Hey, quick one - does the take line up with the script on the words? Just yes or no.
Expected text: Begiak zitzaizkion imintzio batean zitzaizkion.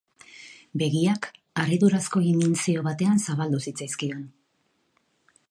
no